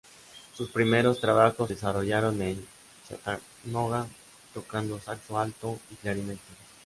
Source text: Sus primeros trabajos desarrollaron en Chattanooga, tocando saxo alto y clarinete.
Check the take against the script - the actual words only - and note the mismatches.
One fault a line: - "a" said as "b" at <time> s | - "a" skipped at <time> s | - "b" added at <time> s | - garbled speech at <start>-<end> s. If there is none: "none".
none